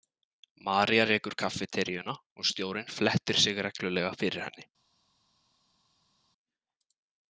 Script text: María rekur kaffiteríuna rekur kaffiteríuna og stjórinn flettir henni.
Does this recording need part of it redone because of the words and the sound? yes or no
yes